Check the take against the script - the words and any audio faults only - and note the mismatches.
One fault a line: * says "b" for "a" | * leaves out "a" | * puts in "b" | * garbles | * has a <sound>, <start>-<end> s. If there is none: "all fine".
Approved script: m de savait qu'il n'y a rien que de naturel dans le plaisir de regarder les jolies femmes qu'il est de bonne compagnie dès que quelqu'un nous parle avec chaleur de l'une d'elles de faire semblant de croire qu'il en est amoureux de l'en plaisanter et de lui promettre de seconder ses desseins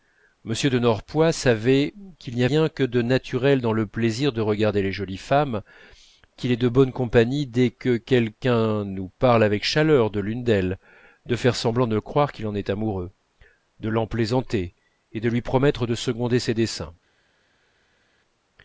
* puts in "norpois"